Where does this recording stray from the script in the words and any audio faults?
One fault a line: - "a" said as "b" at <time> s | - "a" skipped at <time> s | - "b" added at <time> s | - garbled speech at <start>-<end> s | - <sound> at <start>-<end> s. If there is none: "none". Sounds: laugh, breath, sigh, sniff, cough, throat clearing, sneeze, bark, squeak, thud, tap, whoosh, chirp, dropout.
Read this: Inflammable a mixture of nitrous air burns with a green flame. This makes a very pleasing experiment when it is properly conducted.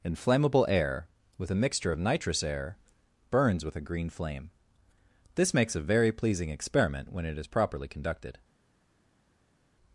- "air with" added at 0.7 s